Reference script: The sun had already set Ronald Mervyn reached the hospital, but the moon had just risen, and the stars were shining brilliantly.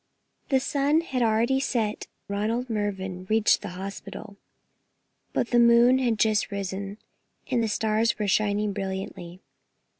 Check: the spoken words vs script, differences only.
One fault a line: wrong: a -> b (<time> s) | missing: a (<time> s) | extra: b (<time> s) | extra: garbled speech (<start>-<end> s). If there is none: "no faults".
no faults